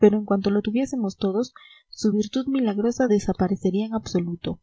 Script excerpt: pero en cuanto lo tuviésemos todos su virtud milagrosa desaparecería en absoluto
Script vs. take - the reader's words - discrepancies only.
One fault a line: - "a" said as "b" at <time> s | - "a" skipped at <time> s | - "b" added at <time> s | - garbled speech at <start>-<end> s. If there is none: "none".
none